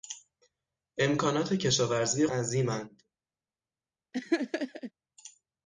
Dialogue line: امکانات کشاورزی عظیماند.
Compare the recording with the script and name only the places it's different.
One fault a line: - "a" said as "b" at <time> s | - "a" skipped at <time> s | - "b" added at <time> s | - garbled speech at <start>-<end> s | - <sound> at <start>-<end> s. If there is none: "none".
- laugh at 4.1-4.9 s